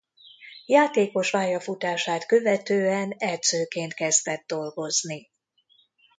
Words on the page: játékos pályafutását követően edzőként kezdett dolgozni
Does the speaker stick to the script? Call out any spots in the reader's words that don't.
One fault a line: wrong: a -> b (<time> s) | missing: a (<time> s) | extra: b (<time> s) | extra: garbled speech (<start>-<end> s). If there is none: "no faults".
no faults